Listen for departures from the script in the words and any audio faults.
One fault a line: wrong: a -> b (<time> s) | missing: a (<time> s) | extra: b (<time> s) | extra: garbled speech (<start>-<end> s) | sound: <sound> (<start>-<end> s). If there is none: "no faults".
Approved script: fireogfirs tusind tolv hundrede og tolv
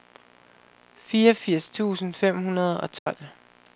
wrong: tolv -> fem (2.1 s)
sound: dropout (3.0-3.1 s)